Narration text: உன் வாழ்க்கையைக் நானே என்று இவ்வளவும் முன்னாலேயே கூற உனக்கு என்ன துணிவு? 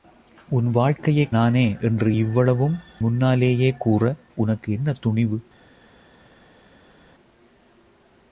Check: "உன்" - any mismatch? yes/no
no